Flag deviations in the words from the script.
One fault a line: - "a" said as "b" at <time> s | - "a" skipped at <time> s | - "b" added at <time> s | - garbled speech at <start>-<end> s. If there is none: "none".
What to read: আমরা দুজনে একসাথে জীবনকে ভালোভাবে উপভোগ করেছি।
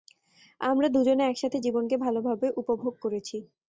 none